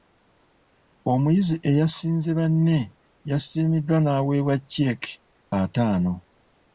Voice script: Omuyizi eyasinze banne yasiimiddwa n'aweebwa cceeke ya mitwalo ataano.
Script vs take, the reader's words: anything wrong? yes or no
yes